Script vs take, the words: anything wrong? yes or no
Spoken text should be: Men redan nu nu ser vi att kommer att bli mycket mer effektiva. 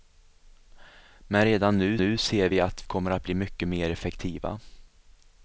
no